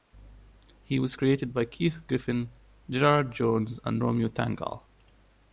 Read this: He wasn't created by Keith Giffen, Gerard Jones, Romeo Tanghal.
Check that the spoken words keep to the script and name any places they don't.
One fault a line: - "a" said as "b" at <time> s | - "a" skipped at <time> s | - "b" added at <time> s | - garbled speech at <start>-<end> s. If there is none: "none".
- "wasn't" said as "was" at 1.0 s
- "and" added at 3.9 s